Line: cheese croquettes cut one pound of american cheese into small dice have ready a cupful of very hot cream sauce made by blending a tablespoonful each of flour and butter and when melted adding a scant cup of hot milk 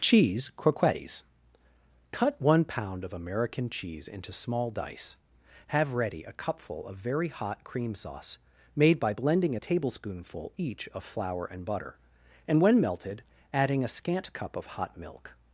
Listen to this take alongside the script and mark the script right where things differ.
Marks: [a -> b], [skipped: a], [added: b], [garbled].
cheese croquettes cut one pound of american cheese into small dice have ready a cupful of very hot cream sauce made by blending a tablespoonful each of flour and butter and when melted adding a scant cup of hot milk